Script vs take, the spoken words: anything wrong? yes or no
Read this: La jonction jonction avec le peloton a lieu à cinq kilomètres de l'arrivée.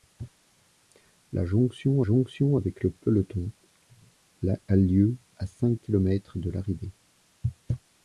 no